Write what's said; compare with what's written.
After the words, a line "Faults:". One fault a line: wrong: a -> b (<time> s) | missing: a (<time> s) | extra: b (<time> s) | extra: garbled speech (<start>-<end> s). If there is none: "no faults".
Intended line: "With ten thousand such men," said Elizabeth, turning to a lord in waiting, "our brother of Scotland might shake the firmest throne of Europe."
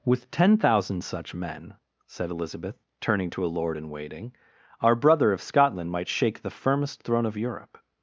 "With ten thousand such men," said Elizabeth, turning to a lord in waiting, "our brother of Scotland might shake the firmest throne of Europe."
Faults:
no faults